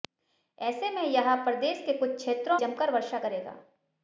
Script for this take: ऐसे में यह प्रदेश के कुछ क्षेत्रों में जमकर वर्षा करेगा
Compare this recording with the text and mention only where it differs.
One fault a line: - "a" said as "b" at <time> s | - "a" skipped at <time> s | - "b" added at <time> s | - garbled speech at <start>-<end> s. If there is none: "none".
- "में" skipped at 2.6 s